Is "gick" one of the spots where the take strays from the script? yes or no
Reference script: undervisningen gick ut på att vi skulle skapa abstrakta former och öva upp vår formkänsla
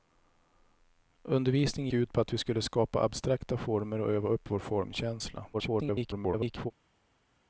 yes